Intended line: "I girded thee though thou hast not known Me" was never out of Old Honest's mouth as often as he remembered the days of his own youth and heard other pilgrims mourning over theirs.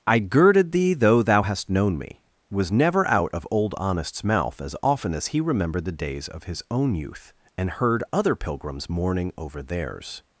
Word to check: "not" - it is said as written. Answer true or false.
false